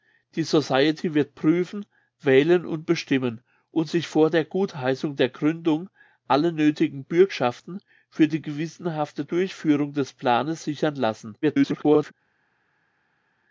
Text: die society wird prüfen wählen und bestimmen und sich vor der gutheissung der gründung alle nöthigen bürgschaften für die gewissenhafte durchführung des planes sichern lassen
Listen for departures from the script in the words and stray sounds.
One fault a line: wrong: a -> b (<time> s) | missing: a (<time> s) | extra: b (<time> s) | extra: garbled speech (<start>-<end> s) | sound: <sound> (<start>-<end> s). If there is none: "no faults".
extra: garbled speech (11.4-12.1 s)